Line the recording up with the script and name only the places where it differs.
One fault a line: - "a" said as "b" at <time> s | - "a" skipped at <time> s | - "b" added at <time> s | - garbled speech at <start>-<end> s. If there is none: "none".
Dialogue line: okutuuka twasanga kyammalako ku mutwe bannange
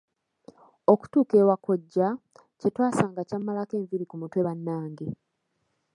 - "ewa kkojja kye" added at 1.4 s
- "enviiri" added at 3.8 s